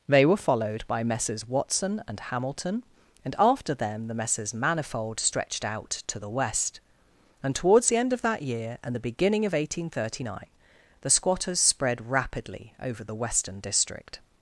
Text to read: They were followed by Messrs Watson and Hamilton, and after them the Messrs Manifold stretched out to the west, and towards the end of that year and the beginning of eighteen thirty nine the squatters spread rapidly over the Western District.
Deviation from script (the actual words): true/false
false